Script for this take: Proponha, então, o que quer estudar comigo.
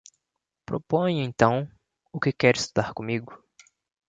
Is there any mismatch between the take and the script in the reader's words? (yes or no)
no